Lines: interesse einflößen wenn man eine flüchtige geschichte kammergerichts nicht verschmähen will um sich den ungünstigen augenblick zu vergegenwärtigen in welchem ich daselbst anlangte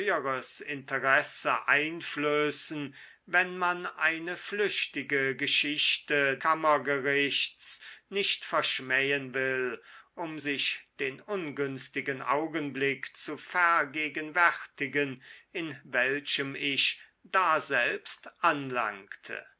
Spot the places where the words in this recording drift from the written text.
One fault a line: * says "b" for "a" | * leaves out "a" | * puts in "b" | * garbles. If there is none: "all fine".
all fine